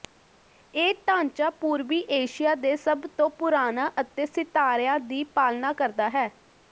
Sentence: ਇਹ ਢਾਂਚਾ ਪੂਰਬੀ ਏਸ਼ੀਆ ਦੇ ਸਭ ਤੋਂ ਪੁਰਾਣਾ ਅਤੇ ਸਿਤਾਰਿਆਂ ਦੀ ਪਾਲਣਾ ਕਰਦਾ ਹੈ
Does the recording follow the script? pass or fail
pass